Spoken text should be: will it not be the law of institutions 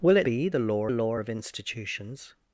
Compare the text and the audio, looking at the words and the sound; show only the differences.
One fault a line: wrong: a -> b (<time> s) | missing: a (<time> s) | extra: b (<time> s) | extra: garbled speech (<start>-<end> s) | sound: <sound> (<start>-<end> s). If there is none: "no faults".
missing: not (0.3 s)
extra: law (0.9 s)